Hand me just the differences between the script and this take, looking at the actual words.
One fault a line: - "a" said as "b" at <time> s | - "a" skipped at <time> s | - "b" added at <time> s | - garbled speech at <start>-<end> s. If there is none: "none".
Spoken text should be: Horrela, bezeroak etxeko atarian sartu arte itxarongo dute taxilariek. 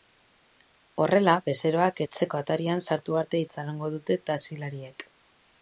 none